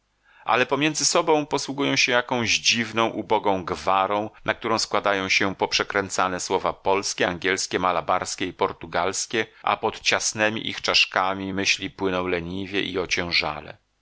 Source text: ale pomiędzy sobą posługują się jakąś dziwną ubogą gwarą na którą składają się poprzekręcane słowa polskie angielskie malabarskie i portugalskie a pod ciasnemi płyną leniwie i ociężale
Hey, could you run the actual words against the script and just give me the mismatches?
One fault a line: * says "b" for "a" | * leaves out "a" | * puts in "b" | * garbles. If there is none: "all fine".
* puts in "ich czaszkami myśli"